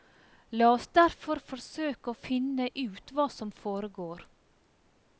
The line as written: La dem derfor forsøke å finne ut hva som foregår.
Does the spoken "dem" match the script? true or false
false